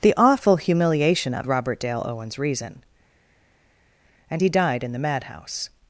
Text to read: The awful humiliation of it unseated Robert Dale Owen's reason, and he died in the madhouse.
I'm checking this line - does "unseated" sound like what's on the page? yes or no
no